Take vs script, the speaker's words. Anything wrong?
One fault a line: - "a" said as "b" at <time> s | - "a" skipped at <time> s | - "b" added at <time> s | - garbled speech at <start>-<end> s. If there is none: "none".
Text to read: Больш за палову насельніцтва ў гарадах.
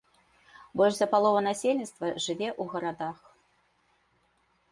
- "жыве" added at 2.2 s